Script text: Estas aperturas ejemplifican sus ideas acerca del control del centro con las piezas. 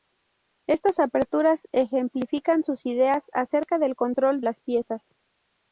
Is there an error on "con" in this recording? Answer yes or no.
yes